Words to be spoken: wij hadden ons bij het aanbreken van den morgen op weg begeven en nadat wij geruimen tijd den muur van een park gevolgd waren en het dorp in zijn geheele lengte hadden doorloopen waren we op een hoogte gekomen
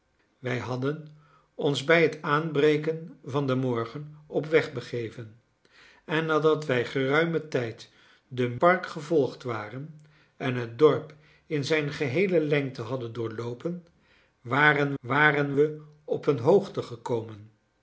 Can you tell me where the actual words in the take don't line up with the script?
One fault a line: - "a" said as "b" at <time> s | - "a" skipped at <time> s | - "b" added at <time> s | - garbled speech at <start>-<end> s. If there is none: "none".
- "muur van een" skipped at 8.6 s
- "waren" added at 15.0 s